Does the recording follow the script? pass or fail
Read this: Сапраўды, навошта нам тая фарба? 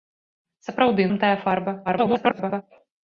fail